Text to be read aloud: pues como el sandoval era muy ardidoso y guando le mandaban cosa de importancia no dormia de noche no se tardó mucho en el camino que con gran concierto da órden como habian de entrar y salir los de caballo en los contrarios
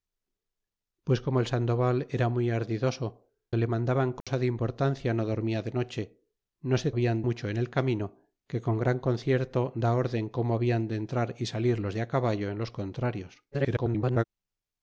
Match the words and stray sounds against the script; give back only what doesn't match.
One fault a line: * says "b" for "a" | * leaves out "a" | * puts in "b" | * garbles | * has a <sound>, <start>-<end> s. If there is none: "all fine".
* leaves out "y guando"
* has a dropout, 4.2-4.3 s
* says "habian" for "tardó"
* garbles